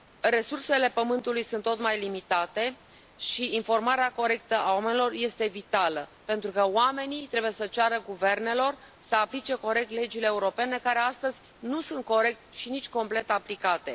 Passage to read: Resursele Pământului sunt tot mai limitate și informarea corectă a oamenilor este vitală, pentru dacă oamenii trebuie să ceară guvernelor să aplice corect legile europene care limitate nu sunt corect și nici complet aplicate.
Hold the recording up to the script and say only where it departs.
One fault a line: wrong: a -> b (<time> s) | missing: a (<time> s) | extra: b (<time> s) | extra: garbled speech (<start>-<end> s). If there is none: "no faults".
wrong: dacă -> că (6.5 s)
wrong: limitate -> astăzi (11.0 s)